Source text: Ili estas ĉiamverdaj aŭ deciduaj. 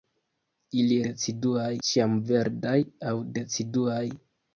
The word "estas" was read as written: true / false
false